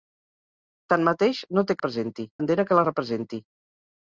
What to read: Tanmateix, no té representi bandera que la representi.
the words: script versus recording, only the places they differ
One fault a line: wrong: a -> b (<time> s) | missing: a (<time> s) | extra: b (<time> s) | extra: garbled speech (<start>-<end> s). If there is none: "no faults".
no faults